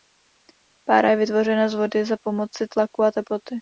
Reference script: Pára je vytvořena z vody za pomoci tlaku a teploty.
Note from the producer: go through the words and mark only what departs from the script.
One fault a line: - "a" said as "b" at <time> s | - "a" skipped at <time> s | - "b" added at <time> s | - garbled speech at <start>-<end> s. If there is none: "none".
none